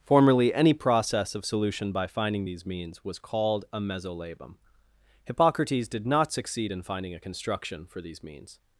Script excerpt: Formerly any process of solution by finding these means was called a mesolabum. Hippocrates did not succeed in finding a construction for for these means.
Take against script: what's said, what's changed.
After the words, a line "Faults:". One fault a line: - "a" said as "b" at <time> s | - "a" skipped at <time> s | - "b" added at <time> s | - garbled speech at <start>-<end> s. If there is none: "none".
Formerly any process of solution by finding these means was called a mesolabum. Hippocrates did not succeed in finding a construction for these means.
Faults:
- "for" skipped at 8.0 s